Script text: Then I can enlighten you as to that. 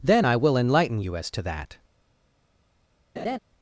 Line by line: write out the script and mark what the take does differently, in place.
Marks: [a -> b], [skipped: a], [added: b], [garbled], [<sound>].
Then I [can -> will] enlighten you as to that. [laugh]